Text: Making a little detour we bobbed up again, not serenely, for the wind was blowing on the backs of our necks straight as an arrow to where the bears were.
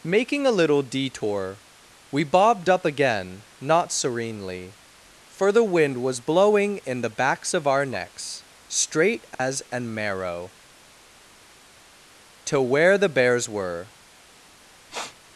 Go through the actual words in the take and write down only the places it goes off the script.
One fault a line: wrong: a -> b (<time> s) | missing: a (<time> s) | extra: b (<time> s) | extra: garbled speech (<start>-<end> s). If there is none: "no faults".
wrong: on -> in (6.8 s)
wrong: arrow -> marrow (9.9 s)